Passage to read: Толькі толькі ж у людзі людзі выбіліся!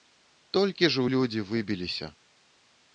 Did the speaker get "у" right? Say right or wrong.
right